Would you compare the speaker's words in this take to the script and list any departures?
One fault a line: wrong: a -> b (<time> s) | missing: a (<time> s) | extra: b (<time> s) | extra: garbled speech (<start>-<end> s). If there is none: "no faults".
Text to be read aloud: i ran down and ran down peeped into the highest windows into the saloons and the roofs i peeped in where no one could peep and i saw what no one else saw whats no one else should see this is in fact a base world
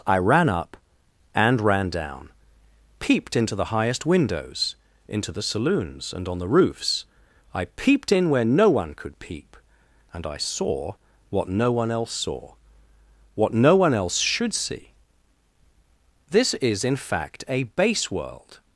wrong: down -> up (0.5 s)
extra: on (6.3 s)
wrong: whats -> what (13.3 s)